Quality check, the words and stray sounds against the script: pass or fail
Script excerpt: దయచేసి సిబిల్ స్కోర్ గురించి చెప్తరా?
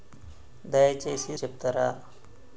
fail